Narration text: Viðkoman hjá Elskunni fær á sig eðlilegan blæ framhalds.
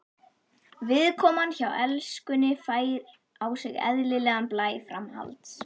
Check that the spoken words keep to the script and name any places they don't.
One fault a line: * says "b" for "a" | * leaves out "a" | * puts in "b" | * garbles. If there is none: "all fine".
all fine